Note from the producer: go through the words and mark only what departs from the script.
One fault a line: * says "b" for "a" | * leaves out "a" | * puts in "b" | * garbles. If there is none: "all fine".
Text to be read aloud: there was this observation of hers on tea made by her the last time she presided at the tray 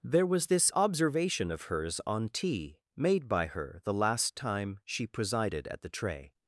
all fine